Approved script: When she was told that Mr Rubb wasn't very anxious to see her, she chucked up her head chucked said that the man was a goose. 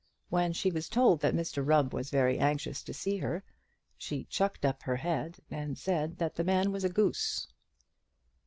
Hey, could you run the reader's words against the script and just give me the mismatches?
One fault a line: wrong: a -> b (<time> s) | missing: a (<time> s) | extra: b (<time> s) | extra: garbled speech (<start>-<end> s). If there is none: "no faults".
wrong: wasn't -> was (1.9 s)
wrong: chucked -> and (5.5 s)